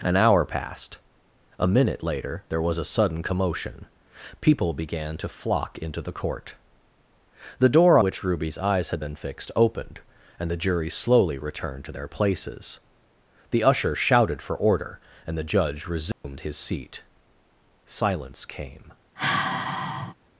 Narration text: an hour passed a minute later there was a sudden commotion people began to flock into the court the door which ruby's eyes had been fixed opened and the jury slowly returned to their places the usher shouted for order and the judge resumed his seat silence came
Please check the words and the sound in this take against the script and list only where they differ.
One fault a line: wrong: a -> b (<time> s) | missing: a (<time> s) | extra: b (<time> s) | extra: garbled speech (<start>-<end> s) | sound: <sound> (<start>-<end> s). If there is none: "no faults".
sound: dropout (16.1-16.2 s)
sound: sigh (19.2-20.1 s)